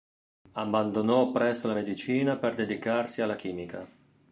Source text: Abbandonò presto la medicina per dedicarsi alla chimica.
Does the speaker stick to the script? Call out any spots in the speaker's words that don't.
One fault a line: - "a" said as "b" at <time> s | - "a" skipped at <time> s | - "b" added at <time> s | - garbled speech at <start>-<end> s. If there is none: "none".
none